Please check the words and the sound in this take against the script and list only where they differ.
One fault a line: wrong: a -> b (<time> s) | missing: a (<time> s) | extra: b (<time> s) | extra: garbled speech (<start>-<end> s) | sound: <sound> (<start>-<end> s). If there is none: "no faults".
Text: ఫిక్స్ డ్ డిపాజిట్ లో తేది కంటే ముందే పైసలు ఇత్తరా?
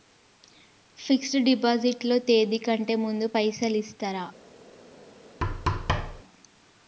sound: thud (5.4-6.2 s)